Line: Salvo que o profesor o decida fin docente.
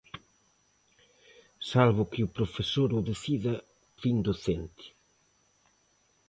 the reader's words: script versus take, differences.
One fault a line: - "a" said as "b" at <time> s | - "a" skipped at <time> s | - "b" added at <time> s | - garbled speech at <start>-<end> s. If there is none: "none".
none